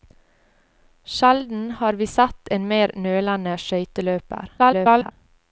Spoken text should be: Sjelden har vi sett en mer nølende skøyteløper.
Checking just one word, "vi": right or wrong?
right